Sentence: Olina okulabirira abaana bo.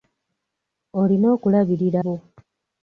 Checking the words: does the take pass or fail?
fail